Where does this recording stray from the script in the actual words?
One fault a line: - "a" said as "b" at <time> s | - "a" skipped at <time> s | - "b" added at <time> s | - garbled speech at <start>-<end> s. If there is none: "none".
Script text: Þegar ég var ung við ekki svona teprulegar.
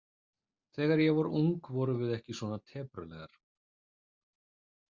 - "vorum" added at 1.8 s